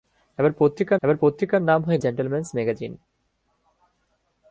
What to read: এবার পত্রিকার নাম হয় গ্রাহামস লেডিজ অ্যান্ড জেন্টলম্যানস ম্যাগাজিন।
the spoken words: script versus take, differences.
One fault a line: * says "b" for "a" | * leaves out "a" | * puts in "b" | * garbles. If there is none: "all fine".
* puts in "এবার পত্রিকার"
* leaves out "গ্রাহামস লেডিজ অ্যান্ড"